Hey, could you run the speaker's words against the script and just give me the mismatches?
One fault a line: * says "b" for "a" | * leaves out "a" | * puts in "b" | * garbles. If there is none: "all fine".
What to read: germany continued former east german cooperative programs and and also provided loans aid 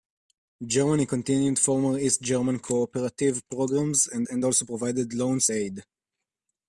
all fine